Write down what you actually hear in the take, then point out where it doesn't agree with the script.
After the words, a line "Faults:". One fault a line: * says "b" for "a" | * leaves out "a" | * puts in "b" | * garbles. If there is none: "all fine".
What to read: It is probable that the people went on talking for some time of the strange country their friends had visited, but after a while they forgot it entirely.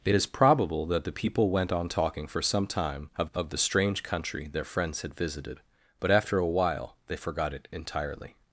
It is probable that the people went on talking for some time of of the strange country their friends had visited, but after a while they forgot it entirely.
Faults:
* puts in "of"